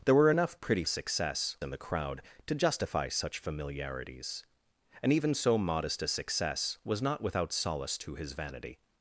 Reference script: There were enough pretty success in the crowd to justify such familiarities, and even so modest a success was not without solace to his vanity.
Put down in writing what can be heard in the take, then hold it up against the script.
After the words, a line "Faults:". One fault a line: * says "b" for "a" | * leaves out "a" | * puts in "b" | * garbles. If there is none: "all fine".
There were enough pretty success in the crowd to justify such familiarities, and even so modest a success was not without solace to his vanity.
Faults:
all fine